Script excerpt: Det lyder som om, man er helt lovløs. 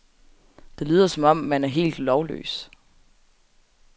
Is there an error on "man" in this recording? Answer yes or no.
no